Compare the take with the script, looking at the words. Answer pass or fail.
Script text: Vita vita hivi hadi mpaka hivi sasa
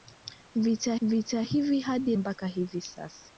pass